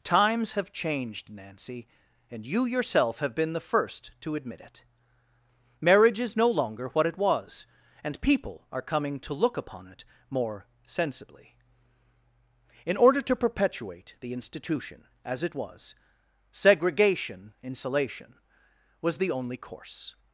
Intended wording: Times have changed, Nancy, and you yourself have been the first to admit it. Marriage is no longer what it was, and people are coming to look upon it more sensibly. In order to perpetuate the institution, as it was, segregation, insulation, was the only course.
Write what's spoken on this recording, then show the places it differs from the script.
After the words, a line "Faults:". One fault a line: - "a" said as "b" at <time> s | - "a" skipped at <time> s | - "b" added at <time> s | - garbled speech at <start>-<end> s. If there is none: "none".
Times have changed, Nancy, and you yourself have been the first to admit it. Marriage is no longer what it was, and people are coming to look upon it more sensibly. In order to perpetuate the institution, as it was, segregation, insulation, was the only course.
Faults:
none